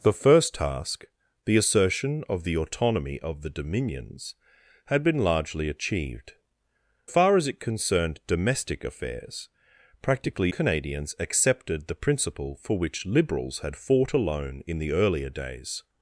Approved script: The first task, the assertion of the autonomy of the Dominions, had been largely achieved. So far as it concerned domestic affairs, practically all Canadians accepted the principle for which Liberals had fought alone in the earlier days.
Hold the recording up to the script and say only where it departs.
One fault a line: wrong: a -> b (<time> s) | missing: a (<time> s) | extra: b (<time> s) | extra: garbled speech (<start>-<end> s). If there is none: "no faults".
missing: So (6.3 s)
missing: all (10.5 s)